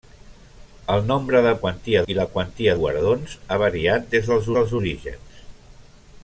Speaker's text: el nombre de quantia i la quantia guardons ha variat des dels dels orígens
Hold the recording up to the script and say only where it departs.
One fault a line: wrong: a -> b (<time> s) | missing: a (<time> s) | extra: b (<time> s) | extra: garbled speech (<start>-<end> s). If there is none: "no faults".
no faults